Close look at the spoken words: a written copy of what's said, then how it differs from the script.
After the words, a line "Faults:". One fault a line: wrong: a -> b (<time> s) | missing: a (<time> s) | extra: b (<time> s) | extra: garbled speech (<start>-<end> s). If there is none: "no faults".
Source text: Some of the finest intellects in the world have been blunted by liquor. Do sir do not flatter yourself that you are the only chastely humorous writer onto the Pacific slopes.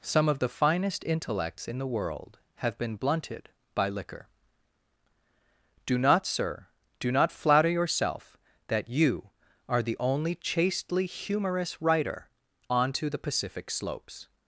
Some of the finest intellects in the world have been blunted by liquor. Do not, sir do not flatter yourself that you are the only chastely humorous writer onto the Pacific slopes.
Faults:
extra: not (6.0 s)